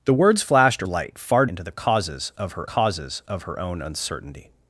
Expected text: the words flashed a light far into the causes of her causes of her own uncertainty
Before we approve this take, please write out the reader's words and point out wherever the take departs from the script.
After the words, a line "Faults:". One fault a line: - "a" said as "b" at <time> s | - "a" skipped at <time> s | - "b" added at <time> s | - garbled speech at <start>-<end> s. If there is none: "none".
the words flashed a light far into the causes of her causes of her own uncertainty
Faults:
none